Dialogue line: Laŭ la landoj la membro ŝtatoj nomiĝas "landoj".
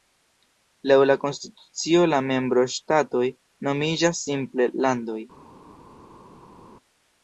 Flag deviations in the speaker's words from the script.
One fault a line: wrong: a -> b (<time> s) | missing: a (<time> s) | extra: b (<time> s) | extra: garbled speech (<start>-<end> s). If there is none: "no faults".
wrong: landoj -> konstitucio (1.2 s)
extra: simple (4.3 s)